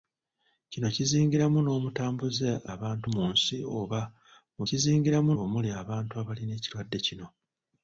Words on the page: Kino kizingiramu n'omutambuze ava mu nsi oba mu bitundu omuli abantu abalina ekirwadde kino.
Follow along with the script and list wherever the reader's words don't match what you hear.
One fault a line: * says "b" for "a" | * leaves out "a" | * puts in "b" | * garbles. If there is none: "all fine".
* says "abantu" for "ava"
* says "kizingiramu" for "bitundu"